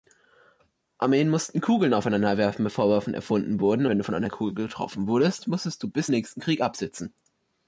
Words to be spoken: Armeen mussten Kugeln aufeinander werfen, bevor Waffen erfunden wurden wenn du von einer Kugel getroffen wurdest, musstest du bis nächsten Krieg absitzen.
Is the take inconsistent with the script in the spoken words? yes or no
no